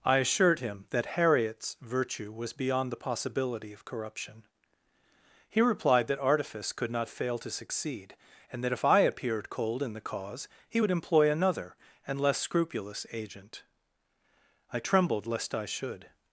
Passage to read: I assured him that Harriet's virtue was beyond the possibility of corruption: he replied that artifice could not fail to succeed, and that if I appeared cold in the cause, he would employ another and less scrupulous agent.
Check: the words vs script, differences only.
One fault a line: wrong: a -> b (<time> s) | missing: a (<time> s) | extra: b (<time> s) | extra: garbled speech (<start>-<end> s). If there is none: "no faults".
extra: I trembled lest I should (14.7 s)